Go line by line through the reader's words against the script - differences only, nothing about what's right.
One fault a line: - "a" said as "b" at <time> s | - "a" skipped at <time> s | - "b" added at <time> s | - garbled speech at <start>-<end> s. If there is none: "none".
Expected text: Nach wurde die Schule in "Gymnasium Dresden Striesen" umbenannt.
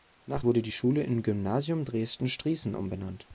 none